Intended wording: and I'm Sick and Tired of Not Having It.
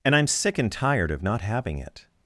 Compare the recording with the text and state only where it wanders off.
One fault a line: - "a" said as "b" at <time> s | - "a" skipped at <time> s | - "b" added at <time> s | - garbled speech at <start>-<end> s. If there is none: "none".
none